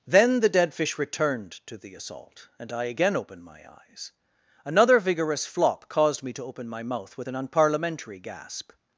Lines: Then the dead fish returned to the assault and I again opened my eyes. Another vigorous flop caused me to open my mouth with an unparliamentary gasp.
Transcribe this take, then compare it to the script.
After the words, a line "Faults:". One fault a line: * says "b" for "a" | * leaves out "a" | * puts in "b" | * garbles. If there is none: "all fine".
Then the dead fish returned to the assault and I again opened my eyes. Another vigorous flop caused me to open my mouth with an unparliamentary gasp.
Faults:
all fine